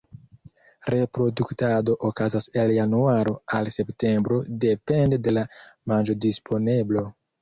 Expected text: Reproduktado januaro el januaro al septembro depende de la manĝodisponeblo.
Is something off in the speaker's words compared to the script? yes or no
yes